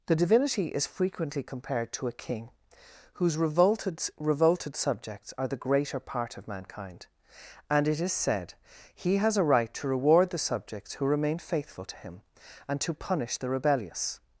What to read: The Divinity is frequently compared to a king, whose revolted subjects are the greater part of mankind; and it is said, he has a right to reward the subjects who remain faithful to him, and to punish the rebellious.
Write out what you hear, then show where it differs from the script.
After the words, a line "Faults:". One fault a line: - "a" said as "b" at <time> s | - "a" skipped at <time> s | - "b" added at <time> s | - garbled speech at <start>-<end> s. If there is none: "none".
The Divinity is frequently compared to a king, whose revolted revolted subjects are the greater part of mankind; and it is said, he has a right to reward the subjects who remain faithful to him, and to punish the rebellious.
Faults:
- "revolted" added at 4.2 s